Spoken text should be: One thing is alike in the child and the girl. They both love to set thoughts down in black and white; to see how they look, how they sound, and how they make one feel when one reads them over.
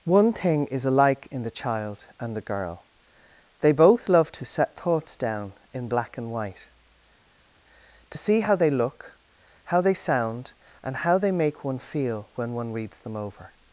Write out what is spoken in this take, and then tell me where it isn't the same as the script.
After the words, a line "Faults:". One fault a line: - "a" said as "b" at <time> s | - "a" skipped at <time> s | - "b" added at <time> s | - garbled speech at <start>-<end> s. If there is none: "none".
One thing is alike in the child and the girl. They both love to set thoughts down in black and white; to see how they look, how they sound, and how they make one feel when one reads them over.
Faults:
none